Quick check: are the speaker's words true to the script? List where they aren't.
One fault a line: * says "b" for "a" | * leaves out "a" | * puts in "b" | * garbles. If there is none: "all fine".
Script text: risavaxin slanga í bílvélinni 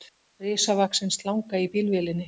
all fine